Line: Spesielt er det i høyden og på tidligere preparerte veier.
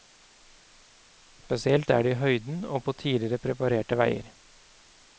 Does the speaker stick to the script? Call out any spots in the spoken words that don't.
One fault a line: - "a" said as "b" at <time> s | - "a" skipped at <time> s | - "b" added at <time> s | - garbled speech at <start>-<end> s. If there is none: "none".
none